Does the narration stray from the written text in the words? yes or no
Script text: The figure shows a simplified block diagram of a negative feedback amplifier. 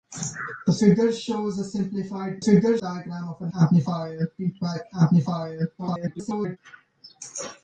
yes